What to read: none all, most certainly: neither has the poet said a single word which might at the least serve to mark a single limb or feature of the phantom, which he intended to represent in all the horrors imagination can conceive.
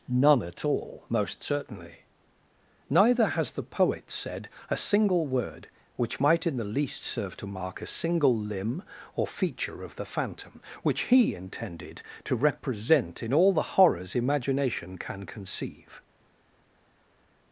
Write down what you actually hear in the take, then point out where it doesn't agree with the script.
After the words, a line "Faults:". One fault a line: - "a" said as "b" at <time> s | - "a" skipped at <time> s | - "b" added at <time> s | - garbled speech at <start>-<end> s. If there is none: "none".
none at all, most certainly: neither has the poet said a single word which might in the least serve to mark a single limb or feature of the phantom, which he intended to represent in all the horrors imagination can conceive.
Faults:
- "at" added at 0.4 s
- "at" said as "in" at 6.5 s